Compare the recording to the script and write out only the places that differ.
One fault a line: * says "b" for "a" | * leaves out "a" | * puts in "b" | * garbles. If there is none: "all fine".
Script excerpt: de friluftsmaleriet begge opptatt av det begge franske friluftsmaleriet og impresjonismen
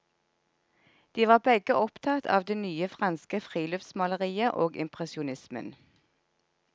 * says "var" for "friluftsmaleriet"
* says "nye" for "begge"